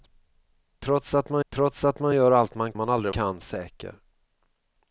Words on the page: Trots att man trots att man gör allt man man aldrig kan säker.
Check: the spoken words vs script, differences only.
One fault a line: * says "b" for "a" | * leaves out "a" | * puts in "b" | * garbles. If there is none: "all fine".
all fine